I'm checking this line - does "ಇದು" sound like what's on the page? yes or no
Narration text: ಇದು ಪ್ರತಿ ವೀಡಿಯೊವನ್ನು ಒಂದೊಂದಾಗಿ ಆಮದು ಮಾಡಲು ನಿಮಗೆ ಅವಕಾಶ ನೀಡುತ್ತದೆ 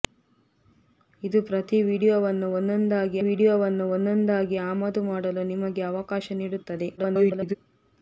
yes